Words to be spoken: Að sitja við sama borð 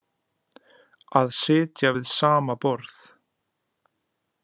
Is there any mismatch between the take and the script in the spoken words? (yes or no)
no